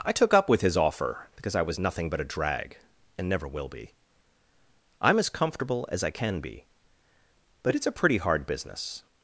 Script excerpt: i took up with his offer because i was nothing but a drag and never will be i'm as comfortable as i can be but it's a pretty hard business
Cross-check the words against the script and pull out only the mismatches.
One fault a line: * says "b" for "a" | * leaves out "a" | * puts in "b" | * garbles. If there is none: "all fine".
all fine